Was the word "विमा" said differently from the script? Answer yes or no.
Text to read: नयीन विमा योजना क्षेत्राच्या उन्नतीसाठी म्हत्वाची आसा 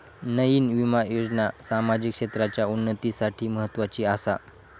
no